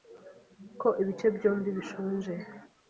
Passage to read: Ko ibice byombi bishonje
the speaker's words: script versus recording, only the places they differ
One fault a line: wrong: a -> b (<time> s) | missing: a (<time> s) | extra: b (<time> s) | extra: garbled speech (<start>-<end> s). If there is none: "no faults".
no faults